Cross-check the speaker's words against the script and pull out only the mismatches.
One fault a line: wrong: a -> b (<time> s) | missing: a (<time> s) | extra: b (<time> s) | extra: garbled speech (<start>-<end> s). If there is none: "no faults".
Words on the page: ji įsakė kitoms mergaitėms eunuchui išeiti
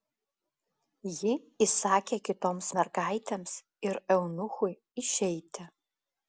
extra: ir (3.9 s)